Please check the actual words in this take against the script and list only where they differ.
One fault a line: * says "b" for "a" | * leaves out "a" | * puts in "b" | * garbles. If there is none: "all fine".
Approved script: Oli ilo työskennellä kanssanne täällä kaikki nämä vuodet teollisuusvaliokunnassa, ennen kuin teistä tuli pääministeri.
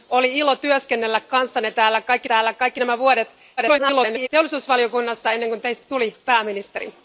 * puts in "täällä kaikki"
* garbles